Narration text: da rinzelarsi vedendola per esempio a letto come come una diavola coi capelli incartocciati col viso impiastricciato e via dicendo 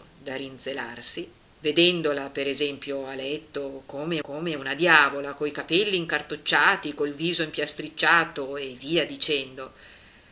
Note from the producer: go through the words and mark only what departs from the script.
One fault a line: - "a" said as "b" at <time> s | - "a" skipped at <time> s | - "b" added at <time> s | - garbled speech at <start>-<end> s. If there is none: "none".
none